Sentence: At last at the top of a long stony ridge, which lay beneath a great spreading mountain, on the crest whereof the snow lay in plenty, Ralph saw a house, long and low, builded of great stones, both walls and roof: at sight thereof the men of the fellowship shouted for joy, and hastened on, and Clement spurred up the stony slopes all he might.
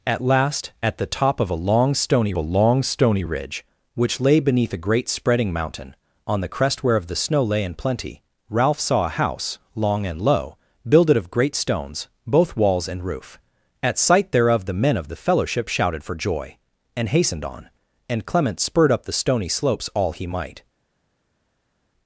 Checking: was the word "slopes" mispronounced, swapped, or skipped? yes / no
no